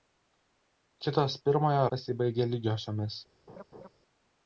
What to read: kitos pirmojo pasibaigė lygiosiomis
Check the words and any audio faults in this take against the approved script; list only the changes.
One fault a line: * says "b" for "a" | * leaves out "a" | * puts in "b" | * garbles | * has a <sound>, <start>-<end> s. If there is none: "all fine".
* has a laugh, 3.5-3.9 s